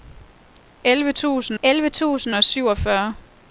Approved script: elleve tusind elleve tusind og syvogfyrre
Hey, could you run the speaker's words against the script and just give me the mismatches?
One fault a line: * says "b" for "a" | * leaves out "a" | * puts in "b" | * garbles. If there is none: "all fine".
all fine